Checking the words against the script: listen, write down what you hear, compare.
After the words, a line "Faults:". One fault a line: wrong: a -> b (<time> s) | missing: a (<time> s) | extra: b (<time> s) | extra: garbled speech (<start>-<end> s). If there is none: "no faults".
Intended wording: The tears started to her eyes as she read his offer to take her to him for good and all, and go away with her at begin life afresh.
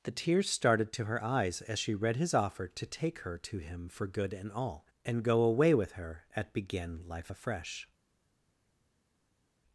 The tears started to her eyes as she read his offer to take her to him for good and all, and go away with her at begin life afresh.
Faults:
no faults